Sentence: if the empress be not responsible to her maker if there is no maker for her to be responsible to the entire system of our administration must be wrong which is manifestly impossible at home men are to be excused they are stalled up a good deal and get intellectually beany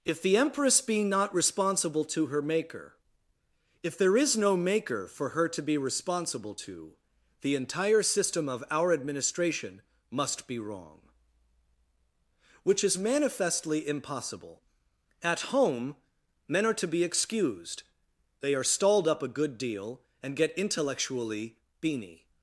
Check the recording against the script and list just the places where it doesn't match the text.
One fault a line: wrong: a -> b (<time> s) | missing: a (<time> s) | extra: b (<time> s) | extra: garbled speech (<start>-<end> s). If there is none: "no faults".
no faults